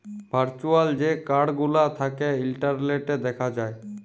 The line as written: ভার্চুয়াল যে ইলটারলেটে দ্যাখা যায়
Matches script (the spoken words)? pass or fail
fail